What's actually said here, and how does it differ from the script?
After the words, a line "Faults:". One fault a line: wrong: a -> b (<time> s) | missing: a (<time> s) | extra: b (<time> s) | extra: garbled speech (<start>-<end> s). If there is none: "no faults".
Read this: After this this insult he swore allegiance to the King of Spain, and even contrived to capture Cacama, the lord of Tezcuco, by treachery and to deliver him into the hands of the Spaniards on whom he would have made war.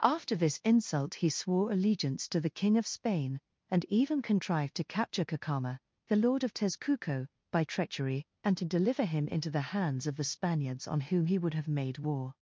After this insult he swore allegiance to the King of Spain, and even contrived to capture Cacama, the lord of Tezcuco, by treachery and to deliver him into the hands of the Spaniards on whom he would have made war.
Faults:
missing: this (0.6 s)